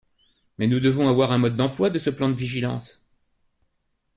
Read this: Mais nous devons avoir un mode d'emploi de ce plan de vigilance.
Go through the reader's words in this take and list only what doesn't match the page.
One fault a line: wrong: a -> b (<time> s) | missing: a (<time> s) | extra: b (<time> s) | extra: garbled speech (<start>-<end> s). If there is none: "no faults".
no faults